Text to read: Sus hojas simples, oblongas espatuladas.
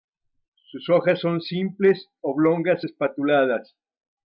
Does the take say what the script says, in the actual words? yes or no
no